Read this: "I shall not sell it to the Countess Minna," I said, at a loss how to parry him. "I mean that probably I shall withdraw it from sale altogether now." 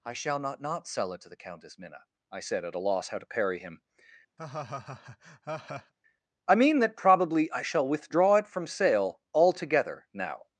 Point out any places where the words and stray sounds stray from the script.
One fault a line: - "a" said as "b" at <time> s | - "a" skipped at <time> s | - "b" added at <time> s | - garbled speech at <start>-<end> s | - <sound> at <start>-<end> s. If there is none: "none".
- "not" added at 0.6 s
- laugh at 4.4-5.9 s